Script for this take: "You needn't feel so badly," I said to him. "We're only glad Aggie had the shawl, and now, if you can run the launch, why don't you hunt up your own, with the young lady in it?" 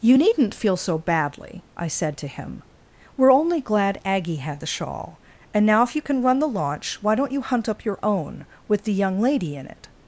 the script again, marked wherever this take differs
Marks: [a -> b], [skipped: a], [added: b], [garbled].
"You needn't feel so badly," I said to him. "We're only glad Aggie had the shawl, and now, if you can run the launch, why don't you hunt up your own, with the young lady in it?"